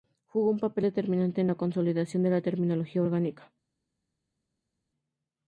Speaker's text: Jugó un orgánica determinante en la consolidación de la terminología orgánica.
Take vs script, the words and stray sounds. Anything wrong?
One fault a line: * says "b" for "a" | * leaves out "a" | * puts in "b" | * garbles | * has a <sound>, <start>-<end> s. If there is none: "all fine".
* says "papel" for "orgánica"